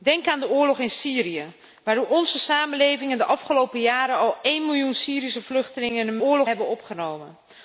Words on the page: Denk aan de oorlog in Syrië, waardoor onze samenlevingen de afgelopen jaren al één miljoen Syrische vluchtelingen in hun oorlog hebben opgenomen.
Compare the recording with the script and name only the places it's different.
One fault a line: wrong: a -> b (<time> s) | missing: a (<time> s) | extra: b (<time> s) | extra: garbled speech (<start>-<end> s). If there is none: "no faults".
no faults